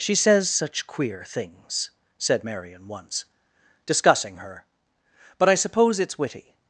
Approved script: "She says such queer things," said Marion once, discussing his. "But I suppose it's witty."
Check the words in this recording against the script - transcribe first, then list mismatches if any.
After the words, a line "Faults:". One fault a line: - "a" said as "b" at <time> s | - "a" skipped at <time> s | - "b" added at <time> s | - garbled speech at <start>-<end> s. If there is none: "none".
"She says such queer things," said Marion once, discussing her. "But I suppose it's witty."
Faults:
- "his" said as "her" at 4.4 s